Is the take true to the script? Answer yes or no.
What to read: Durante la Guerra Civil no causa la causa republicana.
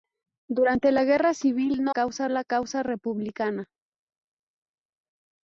yes